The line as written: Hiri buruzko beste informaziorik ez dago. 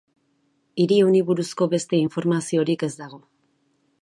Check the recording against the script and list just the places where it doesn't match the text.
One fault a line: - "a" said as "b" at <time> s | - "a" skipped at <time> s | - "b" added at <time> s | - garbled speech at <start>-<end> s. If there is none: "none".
- "honi" added at 1.1 s